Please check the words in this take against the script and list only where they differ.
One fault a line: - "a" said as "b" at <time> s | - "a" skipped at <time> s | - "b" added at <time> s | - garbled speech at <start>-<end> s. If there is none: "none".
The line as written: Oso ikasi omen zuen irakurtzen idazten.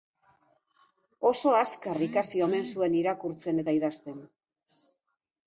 - "azkar" added at 1.6 s
- "eta" added at 3.6 s